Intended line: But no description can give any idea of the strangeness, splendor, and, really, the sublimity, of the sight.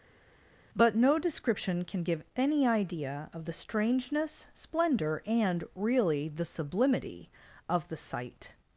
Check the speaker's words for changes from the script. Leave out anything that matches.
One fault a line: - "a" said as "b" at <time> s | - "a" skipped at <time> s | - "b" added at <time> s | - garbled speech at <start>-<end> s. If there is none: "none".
none